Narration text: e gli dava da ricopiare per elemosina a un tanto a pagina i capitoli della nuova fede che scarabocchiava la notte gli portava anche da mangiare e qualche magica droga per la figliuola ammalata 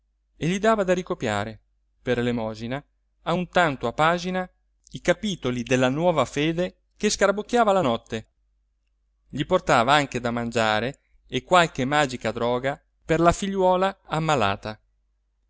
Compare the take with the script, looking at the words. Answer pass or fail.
pass